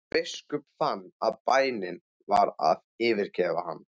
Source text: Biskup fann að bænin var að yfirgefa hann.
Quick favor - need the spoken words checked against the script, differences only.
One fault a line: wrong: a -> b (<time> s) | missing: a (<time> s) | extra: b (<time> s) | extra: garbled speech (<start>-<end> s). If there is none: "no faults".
no faults